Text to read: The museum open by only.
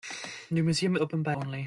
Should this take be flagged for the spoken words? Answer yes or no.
no